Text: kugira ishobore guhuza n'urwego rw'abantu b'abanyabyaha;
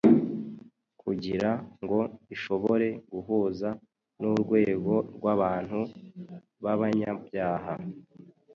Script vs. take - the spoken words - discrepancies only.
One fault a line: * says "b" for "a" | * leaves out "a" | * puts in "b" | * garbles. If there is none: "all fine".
* puts in "ngo"